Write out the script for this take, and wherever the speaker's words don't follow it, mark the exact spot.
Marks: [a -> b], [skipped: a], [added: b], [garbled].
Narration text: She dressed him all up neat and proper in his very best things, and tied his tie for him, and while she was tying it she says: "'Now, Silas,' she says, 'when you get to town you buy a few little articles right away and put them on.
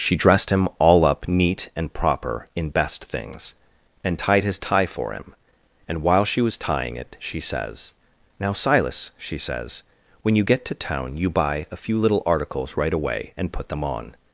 She dressed him all up neat and proper in [skipped: his very] best things, and tied his tie for him, and while she was tying it she says: "'Now, Silas,' she says, 'when you get to town you buy a few little articles right away and put them on.